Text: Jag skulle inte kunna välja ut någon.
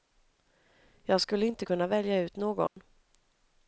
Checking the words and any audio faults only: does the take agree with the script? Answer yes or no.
no